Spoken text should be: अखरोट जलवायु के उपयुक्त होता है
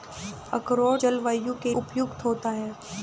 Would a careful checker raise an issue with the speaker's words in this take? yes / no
no